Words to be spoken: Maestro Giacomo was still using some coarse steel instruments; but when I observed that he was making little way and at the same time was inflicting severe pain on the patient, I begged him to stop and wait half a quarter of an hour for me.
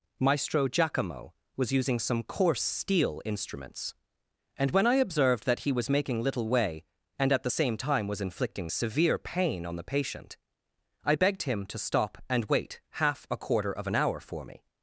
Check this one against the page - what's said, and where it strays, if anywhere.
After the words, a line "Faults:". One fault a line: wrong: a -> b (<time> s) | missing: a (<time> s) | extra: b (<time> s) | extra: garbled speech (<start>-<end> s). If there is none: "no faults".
Maestro Giacomo was using some coarse steel instruments; and when I observed that he was making little way and at the same time was inflicting severe pain on the patient, I begged him to stop and wait half a quarter of an hour for me.
Faults:
missing: still (1.7 s)
wrong: but -> and (4.6 s)